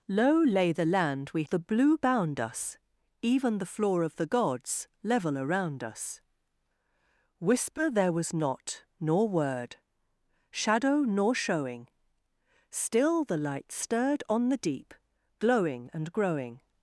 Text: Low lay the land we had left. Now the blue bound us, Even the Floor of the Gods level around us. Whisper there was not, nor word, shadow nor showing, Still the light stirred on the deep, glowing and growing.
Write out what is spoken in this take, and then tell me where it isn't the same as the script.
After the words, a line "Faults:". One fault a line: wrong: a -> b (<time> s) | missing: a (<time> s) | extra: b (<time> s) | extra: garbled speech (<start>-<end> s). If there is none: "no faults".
Low lay the land we the blue bound us, Even the Floor of the Gods level around us. Whisper there was not, nor word, shadow nor showing, Still the light stirred on the deep, glowing and growing.
Faults:
missing: had left Now (1.4 s)